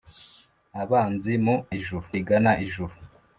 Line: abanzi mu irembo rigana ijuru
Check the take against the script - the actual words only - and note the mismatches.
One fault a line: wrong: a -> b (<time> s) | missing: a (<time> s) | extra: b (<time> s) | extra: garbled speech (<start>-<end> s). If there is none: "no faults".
wrong: irembo -> ijuru (1.8 s)